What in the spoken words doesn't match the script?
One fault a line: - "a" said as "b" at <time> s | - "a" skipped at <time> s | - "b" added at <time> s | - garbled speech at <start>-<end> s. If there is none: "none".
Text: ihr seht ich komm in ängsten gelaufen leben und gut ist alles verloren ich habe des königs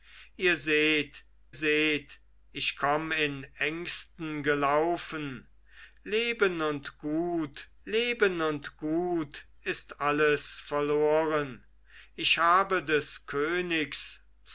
- "seht" added at 1.5 s
- "leben und gut" added at 7.8 s